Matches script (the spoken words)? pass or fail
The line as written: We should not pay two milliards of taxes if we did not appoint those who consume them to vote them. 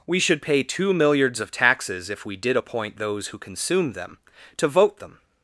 fail